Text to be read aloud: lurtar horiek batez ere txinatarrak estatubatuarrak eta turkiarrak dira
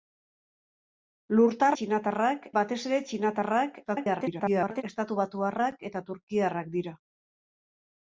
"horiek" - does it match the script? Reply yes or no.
no